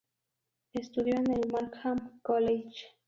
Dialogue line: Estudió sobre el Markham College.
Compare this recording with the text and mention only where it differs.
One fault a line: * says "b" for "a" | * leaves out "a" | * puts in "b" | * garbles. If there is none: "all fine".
* says "en" for "sobre"